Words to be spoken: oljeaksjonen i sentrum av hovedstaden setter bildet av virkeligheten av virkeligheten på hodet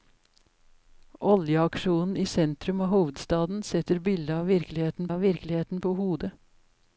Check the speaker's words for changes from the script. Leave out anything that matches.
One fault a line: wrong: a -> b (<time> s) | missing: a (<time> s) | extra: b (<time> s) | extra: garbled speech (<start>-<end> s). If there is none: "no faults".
no faults